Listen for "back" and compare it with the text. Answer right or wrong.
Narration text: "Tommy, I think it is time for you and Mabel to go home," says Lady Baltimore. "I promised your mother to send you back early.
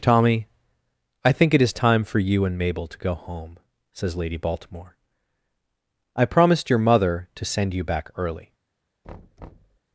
right